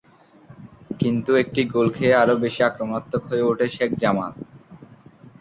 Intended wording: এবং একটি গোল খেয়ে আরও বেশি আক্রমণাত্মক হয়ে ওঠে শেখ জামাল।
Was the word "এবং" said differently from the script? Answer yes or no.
yes